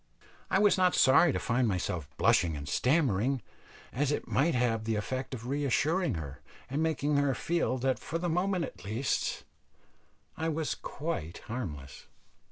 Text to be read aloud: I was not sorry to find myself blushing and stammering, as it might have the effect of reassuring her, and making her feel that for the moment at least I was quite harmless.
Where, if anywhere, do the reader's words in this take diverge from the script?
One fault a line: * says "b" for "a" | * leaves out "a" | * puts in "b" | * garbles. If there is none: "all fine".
all fine